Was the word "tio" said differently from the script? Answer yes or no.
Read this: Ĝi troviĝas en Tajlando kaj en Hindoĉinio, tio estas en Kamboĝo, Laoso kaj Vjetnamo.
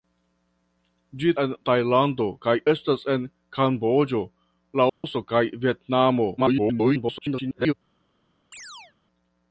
yes